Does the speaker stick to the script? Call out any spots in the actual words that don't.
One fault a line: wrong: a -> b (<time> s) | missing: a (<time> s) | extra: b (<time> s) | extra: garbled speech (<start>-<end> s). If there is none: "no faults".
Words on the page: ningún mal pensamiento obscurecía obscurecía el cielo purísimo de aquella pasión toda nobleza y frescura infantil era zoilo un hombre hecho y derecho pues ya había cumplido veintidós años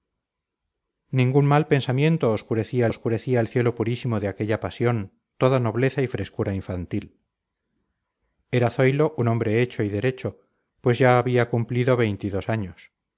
no faults